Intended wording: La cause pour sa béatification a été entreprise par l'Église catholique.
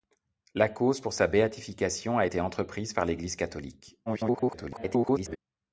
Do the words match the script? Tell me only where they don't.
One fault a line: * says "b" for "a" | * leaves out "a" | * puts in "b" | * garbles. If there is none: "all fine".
* garbles